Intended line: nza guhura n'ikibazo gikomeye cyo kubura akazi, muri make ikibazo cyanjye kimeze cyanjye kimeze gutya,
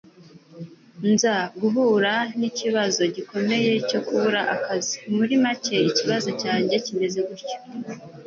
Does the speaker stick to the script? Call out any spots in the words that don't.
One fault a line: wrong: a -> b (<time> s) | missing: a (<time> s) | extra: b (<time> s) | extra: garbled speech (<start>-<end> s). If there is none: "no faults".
missing: cyanjye kimeze (7.2 s)